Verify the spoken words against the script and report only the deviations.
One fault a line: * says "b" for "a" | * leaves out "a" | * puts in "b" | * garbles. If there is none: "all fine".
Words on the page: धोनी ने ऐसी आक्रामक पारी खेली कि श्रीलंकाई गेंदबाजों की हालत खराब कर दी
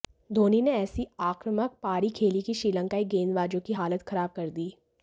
all fine